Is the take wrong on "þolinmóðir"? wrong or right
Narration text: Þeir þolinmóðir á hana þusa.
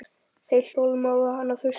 right